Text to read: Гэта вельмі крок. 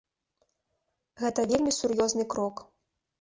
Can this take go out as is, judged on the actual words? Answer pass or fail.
fail